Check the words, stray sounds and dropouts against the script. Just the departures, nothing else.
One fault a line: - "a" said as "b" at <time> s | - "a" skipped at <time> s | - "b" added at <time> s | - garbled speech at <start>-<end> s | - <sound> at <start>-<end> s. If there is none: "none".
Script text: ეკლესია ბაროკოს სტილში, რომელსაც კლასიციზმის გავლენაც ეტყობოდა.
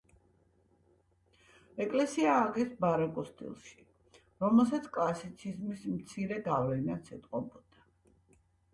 - "ააგეს" added at 2.4 s
- "მცირე" added at 6.0 s